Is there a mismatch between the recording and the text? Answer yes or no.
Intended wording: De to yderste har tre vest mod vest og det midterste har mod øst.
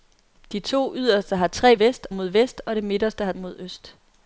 no